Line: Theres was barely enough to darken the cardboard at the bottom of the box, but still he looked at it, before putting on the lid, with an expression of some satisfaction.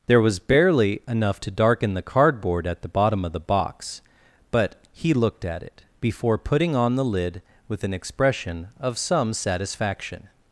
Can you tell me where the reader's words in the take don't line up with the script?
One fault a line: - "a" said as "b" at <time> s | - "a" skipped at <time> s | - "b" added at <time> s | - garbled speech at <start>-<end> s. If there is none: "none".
- "Theres" said as "There" at 0.1 s
- "still" skipped at 4.7 s